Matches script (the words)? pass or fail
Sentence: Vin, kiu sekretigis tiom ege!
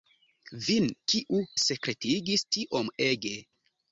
pass